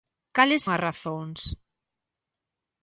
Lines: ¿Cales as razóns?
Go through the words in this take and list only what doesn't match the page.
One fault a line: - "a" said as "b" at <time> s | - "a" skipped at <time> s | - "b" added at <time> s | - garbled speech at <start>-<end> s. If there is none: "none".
none